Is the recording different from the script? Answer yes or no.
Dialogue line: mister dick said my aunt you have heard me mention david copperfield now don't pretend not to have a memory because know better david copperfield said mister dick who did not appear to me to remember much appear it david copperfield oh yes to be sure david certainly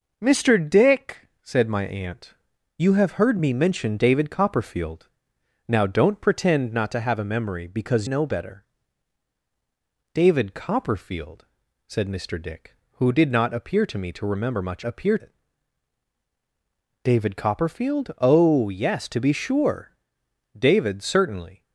no